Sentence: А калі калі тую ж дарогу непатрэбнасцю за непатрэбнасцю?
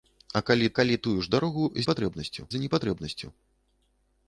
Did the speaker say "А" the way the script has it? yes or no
yes